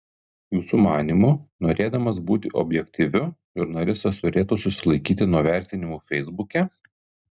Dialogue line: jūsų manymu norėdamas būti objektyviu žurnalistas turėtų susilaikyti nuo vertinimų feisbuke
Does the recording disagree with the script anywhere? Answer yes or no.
no